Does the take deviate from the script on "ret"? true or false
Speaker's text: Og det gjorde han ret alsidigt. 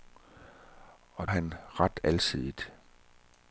false